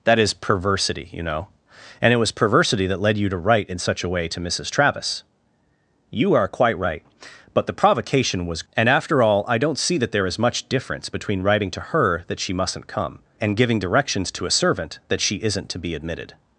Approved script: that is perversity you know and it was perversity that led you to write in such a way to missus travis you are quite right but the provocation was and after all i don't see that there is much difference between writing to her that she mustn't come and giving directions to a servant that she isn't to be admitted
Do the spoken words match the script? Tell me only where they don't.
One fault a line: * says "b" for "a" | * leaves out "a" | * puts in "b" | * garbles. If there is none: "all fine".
all fine